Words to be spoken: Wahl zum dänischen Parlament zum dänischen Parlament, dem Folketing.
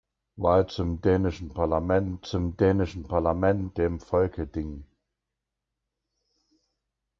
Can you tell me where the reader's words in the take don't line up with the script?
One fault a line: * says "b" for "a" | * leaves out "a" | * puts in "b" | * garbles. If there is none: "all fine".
all fine